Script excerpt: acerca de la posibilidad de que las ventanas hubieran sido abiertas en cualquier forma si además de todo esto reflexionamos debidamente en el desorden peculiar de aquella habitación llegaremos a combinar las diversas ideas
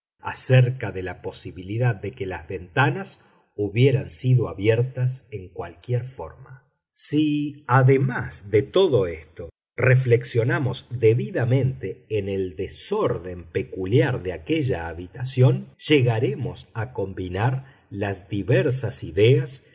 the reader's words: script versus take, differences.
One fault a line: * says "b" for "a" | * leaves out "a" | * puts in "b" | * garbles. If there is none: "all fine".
all fine